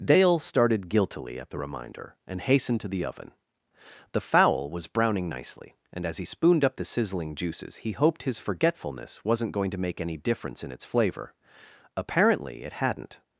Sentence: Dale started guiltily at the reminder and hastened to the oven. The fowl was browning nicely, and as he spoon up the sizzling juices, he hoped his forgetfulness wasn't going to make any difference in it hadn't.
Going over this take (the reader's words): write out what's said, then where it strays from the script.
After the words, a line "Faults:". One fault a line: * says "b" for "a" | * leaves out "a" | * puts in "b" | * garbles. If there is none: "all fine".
Dale started guiltily at the reminder and hastened to the oven. The fowl was browning nicely, and as he spooned up the sizzling juices, he hoped his forgetfulness wasn't going to make any difference in its flavor. Apparently it hadn't.
Faults:
* says "spooned" for "spoon"
* puts in "its flavor Apparently"